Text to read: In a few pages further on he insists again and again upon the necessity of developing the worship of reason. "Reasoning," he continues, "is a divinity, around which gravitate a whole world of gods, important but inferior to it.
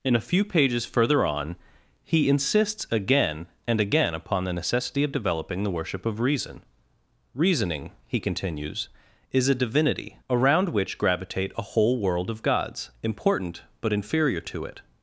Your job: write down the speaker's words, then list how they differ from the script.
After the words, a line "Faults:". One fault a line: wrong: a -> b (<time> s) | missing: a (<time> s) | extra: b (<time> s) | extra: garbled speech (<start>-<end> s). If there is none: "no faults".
In a few pages further on he insists again and again upon the necessity of developing the worship of reason. "Reasoning," he continues, "is a divinity, around which gravitate a whole world of gods, important but inferior to it.
Faults:
no faults